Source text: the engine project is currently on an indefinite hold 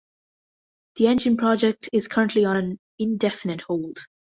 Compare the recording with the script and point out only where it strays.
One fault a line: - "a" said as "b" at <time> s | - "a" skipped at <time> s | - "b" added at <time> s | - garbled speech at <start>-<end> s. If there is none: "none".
none